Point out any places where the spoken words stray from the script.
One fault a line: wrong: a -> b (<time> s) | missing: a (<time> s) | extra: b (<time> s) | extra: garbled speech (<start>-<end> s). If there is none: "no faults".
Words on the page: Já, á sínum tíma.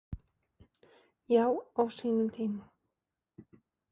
no faults